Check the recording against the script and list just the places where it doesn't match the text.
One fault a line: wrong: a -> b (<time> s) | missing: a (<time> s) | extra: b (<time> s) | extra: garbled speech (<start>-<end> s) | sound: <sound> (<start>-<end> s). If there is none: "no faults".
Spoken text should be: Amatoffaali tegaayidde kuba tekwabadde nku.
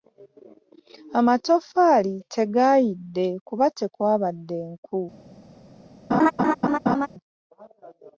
sound: laugh (6.1-7.1 s)